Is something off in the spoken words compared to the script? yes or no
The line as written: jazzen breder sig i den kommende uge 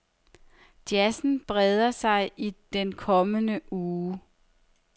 no